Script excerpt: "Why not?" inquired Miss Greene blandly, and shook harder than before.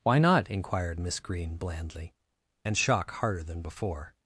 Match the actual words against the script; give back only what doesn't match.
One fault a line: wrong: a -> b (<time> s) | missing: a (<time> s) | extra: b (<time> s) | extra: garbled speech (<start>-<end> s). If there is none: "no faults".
wrong: shook -> shock (2.8 s)